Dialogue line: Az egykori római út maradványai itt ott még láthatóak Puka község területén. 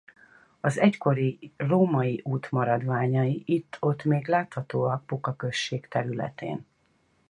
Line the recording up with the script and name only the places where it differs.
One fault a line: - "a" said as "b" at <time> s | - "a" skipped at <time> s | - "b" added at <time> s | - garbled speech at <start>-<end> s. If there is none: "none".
none